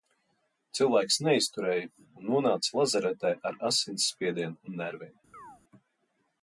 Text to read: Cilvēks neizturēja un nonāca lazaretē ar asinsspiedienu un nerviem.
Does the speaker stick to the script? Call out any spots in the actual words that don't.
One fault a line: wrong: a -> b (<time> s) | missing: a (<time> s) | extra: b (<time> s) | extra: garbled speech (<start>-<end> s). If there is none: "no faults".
no faults